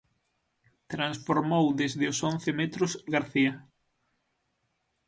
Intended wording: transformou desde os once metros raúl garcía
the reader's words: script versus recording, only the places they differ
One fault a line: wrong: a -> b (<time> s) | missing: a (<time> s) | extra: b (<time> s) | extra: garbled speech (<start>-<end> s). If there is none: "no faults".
missing: raúl (2.9 s)